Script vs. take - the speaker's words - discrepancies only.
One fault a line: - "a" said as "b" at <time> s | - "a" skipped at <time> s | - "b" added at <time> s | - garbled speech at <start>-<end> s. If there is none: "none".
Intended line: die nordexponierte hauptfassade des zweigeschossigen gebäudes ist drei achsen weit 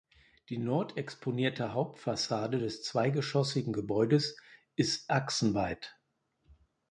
- "drei" skipped at 5.1 s